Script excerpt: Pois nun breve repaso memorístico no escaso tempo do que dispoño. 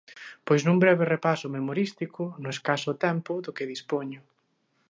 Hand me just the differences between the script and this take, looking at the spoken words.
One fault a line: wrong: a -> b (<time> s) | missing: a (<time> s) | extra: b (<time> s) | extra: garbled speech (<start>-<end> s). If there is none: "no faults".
no faults